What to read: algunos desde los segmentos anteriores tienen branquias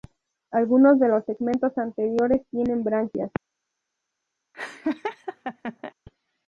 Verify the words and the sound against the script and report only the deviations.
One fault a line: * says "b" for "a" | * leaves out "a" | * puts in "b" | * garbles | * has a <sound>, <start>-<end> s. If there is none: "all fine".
* says "de" for "desde"
* has a laugh, 4.5-5.9 s